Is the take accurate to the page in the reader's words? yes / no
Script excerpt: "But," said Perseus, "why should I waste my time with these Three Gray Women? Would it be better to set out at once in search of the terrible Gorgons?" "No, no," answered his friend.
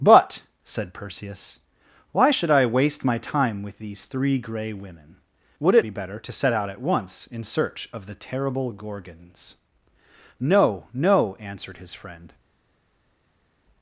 yes